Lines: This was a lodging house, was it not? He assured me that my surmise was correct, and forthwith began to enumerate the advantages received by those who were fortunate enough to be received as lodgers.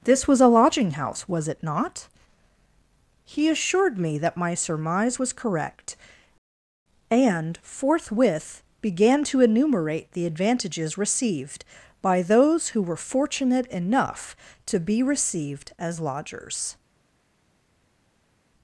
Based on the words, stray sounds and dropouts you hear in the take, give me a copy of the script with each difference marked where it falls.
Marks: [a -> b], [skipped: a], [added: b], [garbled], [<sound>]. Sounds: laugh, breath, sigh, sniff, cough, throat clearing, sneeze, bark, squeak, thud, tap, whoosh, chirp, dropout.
This was a lodging house, was it not? He assured me that my surmise was correct, and forthwith began to enumerate the advantages received by those who were fortunate enough to be received as lodgers.